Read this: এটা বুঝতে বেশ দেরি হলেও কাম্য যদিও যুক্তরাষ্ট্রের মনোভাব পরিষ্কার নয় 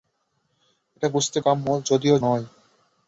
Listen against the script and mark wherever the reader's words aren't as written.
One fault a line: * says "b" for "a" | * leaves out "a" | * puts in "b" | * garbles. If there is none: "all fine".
* leaves out "বেশ দেরি হলেও"
* leaves out "যুক্তরাষ্ট্রের মনোভাব পরিষ্কার"